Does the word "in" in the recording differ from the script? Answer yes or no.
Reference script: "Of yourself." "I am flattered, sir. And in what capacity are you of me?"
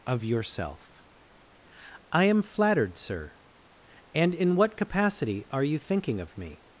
no